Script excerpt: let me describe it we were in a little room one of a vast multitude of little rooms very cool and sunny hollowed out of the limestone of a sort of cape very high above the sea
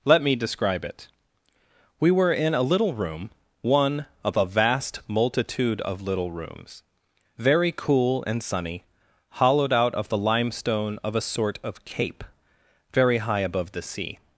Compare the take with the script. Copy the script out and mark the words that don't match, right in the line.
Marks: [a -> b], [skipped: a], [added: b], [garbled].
let me describe it we were in a little room one of a vast multitude of little rooms very cool and sunny hollowed out of the limestone of a sort of cape very high above the sea